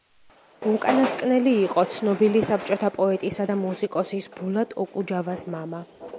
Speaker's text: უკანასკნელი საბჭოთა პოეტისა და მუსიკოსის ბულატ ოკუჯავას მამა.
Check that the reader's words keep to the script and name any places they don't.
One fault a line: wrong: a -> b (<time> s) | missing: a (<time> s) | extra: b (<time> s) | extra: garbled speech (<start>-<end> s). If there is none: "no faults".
extra: იყო ცნობილი (1.6 s)